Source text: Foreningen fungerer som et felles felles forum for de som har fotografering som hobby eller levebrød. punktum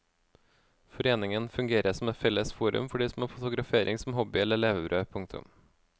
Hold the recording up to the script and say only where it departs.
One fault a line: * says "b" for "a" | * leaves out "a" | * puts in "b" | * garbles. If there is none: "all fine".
* leaves out "felles"